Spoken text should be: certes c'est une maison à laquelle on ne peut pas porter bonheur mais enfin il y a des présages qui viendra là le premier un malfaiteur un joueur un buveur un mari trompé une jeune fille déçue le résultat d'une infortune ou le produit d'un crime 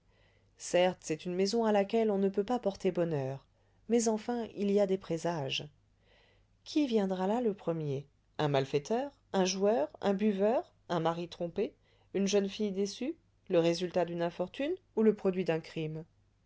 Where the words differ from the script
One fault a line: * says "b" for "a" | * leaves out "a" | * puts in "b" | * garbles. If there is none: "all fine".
all fine